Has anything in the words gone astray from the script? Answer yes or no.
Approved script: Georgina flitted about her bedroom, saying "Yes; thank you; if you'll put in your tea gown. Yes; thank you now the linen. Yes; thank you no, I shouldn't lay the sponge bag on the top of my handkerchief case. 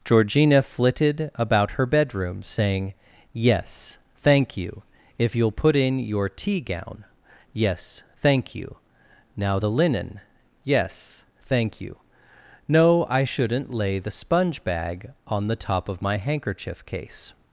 no